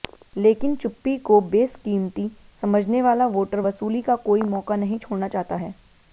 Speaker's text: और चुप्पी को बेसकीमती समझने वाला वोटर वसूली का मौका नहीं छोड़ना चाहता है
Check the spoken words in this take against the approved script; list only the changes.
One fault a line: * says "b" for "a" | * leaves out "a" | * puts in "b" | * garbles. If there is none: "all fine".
* says "लेकिन" for "और"
* puts in "कोई"